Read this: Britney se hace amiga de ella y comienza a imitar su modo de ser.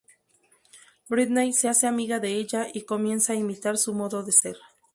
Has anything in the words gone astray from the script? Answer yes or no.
no